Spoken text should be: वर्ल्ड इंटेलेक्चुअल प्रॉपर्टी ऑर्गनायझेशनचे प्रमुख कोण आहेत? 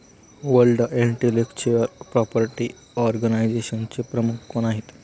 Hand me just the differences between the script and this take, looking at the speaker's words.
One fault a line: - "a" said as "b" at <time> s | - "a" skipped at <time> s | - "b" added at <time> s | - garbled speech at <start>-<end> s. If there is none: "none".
none